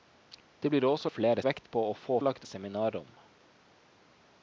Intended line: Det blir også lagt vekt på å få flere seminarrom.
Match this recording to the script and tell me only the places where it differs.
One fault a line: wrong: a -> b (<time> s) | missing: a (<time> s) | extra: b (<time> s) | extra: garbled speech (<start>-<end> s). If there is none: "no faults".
wrong: lagt -> flere (1.1 s)
wrong: flere -> lagt (2.2 s)